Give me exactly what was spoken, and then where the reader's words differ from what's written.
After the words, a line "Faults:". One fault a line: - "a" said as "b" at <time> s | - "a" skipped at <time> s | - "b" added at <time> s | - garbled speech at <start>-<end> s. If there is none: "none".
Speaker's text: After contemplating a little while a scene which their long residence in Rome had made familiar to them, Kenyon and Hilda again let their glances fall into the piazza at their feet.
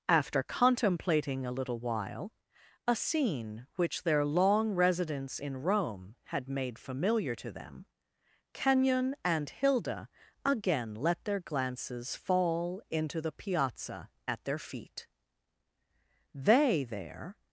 After contemplating a little while a scene which their long residence in Rome had made familiar to them, Kenyon and Hilda again let their glances fall into the piazza at their feet. They there
Faults:
- "They there" added at 16.3 s